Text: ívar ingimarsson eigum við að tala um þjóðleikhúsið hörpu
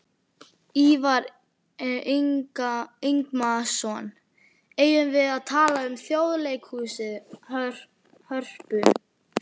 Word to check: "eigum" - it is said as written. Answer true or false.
true